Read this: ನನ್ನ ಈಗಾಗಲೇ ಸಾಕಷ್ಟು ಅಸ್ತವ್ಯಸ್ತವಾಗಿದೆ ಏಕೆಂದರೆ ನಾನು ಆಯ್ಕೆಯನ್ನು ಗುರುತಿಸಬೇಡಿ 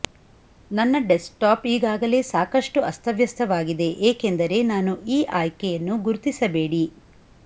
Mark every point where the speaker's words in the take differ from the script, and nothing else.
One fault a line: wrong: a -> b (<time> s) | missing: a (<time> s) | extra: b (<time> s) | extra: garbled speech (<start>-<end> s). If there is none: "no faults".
extra: ಡೆಸ್ಕ್ಟಾಪ್ (1.1 s)
extra: ಈ (5.1 s)